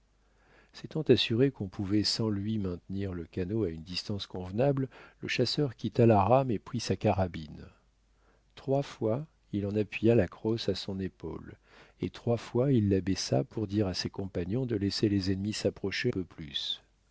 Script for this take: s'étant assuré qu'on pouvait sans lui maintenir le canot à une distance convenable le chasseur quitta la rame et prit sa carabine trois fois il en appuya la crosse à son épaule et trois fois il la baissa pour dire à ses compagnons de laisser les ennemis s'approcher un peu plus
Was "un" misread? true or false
true